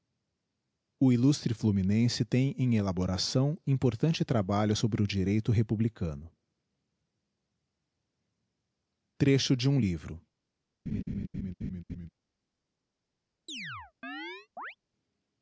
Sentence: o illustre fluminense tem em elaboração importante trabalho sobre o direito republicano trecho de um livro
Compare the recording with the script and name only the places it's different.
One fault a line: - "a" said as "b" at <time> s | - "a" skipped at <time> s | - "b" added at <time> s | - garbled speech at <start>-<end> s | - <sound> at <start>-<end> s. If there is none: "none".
- laugh at 10.9-12.1 s
- chirp at 13.5-14.8 s